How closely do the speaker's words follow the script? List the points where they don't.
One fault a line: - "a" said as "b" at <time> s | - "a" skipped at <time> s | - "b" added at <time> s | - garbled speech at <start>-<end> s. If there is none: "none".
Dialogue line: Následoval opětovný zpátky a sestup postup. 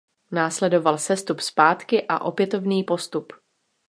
- "opětovný" said as "sestup" at 1.0 s
- "sestup" said as "opětovný" at 2.2 s